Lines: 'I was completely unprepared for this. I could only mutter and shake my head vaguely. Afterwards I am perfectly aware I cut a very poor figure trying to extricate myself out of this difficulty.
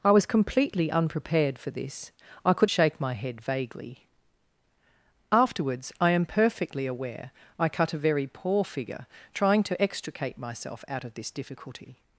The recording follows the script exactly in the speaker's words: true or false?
false